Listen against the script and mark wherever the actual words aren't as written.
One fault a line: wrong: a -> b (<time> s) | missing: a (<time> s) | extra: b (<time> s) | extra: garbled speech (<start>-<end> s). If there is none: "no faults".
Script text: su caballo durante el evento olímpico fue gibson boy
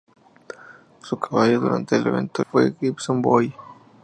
missing: olímpico (2.4 s)